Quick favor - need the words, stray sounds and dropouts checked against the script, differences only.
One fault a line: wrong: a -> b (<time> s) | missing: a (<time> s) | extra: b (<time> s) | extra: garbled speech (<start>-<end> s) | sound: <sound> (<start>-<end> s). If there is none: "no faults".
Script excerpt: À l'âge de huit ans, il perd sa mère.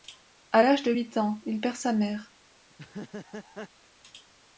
sound: laugh (2.7-3.7 s)